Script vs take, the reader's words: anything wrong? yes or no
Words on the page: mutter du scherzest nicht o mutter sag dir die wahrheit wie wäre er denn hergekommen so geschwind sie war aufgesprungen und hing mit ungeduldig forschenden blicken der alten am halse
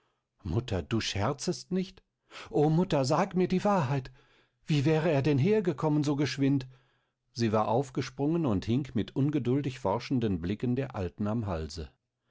yes